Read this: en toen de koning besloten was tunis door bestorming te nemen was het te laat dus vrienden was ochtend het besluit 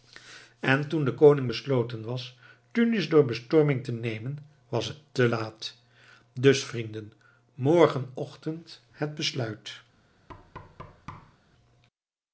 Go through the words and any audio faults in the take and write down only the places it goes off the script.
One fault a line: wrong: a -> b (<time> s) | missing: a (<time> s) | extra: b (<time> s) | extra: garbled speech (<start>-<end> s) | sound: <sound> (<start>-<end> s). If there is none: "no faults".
wrong: was -> morgen (7.5 s)
sound: thud (10.3-11.4 s)